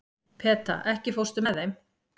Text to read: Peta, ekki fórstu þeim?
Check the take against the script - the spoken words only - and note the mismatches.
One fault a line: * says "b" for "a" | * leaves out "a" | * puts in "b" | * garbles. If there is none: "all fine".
* puts in "með"